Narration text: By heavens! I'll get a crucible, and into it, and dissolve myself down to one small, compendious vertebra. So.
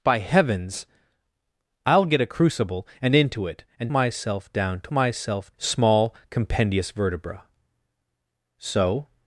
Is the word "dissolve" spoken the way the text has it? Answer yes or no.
no